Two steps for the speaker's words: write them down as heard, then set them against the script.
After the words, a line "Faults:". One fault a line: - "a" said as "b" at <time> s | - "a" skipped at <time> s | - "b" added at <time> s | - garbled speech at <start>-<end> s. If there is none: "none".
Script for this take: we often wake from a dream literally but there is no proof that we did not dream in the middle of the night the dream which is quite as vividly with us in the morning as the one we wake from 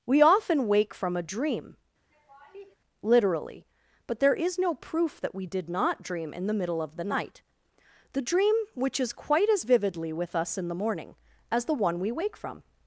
we often wake from a dream literally but there is no proof that we did not dream in the middle of the night the dream which is quite as vividly with us in the morning as the one we wake from
Faults:
none